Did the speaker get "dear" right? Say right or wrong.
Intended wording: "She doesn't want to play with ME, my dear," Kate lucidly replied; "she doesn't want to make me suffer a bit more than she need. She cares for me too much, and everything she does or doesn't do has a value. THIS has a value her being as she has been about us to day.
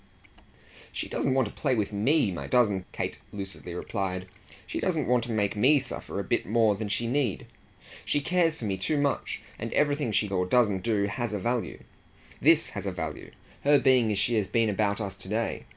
wrong